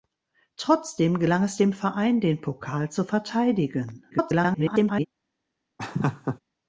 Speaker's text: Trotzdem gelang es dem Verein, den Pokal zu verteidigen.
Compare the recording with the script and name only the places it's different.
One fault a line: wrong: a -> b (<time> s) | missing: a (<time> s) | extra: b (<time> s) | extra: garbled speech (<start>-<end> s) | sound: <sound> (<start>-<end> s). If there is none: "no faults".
extra: garbled speech (4.1-5.1 s)
sound: laugh (5.8-6.4 s)